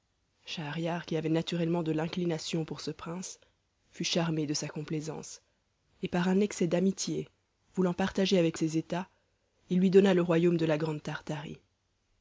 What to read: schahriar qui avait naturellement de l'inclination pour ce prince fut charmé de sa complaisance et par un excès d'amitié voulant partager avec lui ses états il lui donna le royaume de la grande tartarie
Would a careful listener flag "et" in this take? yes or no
no